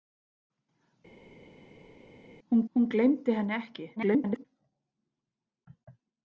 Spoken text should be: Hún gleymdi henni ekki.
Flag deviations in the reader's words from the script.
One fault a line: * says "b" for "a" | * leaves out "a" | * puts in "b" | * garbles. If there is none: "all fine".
* puts in "hún"
* garbles